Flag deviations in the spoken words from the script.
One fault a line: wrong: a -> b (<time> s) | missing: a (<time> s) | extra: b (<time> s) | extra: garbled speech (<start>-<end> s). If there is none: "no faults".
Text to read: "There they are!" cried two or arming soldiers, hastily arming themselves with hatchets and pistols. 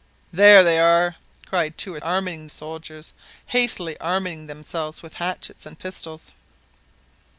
no faults